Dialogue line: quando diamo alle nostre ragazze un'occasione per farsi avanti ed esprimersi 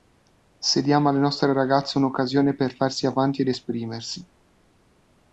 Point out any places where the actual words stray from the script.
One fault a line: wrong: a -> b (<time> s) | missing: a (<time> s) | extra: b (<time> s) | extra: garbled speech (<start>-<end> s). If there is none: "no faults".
wrong: quando -> se (0.6 s)